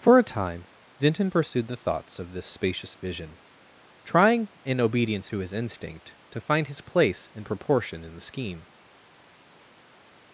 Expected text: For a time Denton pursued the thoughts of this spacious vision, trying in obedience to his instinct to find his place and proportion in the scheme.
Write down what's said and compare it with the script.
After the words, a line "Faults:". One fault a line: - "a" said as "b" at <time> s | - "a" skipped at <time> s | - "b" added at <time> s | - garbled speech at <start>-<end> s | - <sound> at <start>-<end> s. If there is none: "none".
For a time Denton pursued the thoughts of this spacious vision, trying in obedience to his instinct to find his place and proportion in the scheme.
Faults:
none